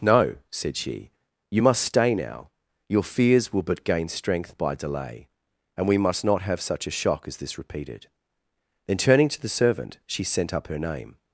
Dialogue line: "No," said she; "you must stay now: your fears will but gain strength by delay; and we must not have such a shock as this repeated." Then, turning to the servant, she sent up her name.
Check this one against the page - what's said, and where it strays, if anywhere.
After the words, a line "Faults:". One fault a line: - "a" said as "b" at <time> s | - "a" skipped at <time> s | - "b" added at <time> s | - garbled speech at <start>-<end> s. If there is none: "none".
"No," said she; "you must stay now: your fears will but gain strength by delay; and we must not have such a shock as this repeated." Then, turning to the servant, she sent up her name.
Faults:
none